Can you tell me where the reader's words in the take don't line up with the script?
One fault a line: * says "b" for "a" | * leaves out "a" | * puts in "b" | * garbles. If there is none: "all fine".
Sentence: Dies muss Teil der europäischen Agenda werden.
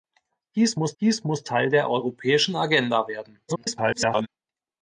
* puts in "dies muss"
* garbles